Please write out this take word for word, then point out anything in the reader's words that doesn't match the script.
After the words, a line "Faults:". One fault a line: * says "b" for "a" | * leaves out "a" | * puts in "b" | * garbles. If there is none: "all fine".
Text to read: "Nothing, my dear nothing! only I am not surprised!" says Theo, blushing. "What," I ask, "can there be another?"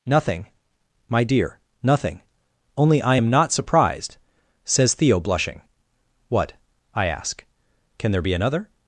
"Nothing, my dear nothing! only I am not surprised!" says Theo, blushing. "What," I ask, "can there be another?"
Faults:
all fine